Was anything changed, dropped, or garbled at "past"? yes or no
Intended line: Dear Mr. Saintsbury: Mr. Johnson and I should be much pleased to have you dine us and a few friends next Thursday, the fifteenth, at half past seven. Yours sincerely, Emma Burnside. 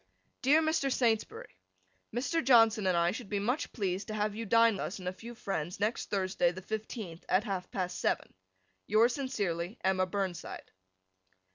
no